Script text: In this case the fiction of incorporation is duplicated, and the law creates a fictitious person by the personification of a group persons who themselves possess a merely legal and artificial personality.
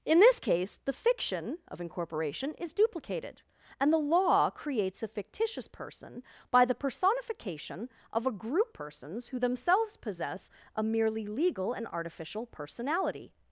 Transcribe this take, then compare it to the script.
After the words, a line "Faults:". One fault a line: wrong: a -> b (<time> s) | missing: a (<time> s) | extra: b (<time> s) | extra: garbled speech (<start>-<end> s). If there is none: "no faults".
In this case the fiction of incorporation is duplicated, and the law creates a fictitious person by the personification of a group persons who themselves possess a merely legal and artificial personality.
Faults:
no faults